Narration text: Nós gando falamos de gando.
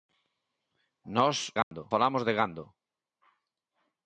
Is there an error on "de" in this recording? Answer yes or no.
no